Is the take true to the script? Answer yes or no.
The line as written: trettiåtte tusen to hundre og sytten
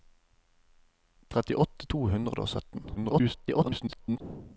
no